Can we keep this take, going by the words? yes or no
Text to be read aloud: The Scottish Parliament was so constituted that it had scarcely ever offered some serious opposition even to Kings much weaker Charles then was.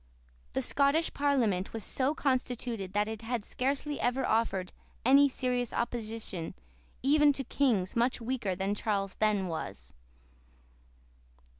no